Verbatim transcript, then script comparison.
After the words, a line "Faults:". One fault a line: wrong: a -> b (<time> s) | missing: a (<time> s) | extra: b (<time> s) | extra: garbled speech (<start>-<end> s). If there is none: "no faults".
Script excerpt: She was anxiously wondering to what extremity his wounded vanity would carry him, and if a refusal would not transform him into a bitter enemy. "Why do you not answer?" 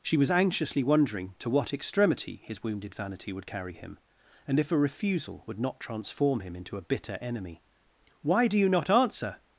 She was anxiously wondering to what extremity his wounded vanity would carry him, and if a refusal would not transform him into a bitter enemy. "Why do you not answer?"
Faults:
no faults